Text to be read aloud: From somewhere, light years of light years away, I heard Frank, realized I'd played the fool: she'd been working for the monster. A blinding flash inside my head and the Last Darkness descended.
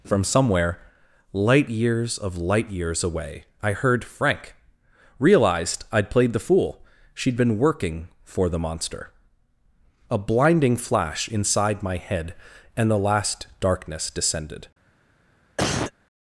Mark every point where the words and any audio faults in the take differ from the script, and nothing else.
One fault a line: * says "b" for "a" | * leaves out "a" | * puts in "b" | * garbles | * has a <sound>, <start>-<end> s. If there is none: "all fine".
* has a cough, 15.6-15.9 s